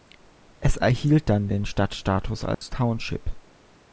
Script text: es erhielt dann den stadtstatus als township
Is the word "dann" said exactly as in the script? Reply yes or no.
yes